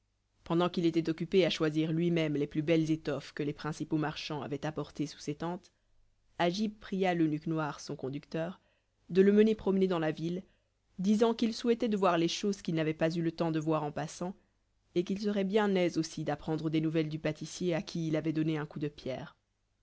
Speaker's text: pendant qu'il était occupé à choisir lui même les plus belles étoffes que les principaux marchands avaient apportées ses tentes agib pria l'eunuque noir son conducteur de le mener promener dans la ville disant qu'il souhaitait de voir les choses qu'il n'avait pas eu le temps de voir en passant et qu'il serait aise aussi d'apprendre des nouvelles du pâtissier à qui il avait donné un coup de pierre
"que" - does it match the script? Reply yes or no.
yes